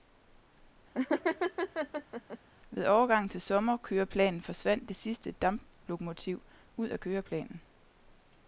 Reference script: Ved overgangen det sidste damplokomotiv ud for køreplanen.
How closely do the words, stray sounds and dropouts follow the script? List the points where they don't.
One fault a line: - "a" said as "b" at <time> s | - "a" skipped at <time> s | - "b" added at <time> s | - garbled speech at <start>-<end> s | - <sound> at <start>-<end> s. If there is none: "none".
- laugh at 0.9-2.4 s
- "til sommerkøreplanen forsvandt" added at 3.3 s
- "for" said as "af" at 6.9 s